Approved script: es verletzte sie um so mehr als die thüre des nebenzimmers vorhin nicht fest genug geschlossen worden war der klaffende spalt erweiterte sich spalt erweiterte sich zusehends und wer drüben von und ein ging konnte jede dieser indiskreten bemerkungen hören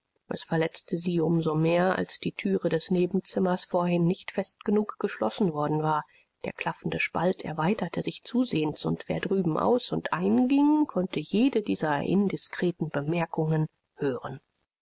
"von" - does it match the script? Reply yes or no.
no